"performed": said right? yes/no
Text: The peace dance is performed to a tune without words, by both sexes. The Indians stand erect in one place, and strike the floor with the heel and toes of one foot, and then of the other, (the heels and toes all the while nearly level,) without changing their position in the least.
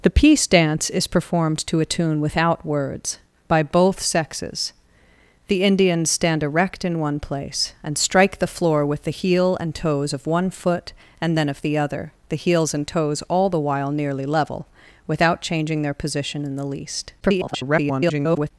yes